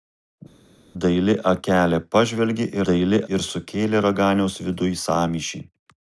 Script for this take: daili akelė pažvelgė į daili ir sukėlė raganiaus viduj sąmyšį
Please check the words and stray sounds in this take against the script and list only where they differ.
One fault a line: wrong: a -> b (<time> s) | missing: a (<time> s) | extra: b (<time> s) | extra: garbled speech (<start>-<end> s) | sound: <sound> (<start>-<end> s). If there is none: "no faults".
no faults